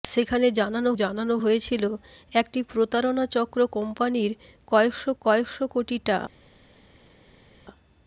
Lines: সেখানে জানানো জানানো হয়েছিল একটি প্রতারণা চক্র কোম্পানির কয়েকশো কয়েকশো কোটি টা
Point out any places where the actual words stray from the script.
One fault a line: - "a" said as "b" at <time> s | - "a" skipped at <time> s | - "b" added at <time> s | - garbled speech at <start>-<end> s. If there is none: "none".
none